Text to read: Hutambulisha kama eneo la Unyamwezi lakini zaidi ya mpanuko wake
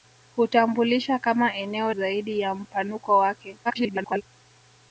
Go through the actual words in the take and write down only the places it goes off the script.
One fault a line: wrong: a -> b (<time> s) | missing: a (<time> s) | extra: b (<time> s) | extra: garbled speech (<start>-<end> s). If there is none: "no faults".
missing: la Unyamwezi lakini (1.9 s)
extra: garbled speech (3.6-4.2 s)